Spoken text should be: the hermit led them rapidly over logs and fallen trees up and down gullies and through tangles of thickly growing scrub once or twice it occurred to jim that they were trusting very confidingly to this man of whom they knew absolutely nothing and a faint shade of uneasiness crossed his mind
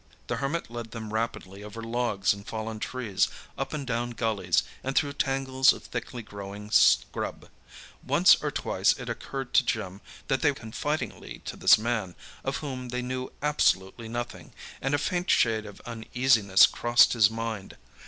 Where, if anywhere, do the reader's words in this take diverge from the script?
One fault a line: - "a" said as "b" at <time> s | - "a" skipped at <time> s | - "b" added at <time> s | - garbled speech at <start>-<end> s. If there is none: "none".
- "were trusting very" skipped at 10.5 s